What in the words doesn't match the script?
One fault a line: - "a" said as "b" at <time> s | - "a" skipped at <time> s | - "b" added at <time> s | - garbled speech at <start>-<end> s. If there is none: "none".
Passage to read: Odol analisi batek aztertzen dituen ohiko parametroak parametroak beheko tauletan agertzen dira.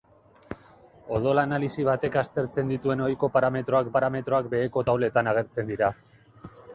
none